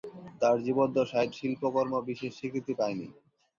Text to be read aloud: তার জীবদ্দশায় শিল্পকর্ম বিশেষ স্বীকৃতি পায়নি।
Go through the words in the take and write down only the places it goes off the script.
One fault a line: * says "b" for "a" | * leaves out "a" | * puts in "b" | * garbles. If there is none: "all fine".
all fine